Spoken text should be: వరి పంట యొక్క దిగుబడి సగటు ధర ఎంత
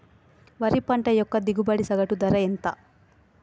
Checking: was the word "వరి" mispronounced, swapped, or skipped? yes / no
no